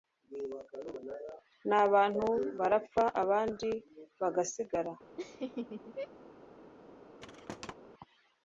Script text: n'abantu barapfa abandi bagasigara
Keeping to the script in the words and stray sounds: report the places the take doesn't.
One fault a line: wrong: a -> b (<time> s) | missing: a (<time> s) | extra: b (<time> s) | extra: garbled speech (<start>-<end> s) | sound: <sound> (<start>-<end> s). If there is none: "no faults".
sound: laugh (5.2-6.1 s)
sound: thud (7.2-7.7 s)